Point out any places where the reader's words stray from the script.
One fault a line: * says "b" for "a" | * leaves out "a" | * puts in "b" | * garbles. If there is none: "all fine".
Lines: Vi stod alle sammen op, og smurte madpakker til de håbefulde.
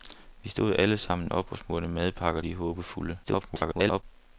* leaves out "til"
* garbles